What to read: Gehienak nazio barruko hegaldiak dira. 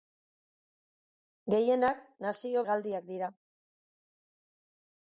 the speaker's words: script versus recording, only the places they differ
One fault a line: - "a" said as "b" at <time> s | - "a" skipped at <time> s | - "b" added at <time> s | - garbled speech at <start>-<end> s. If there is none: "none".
- "barruko" skipped at 2.6 s